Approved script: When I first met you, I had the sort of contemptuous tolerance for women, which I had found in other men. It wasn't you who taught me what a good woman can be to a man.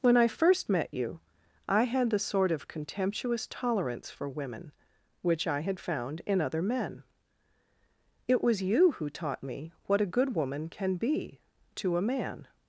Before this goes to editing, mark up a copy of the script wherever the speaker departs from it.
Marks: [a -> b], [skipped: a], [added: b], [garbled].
When I first met you, I had the sort of contemptuous tolerance for women, which I had found in other men. It [wasn't -> was] you who taught me what a good woman can be to a man.